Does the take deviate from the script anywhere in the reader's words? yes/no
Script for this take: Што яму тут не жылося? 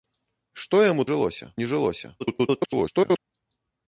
yes